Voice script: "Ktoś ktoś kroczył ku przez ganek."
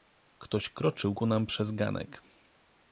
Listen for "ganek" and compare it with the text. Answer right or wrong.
right